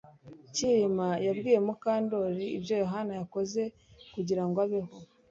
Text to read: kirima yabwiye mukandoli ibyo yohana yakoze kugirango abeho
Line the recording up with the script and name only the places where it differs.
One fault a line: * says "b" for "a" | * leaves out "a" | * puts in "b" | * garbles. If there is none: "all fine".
all fine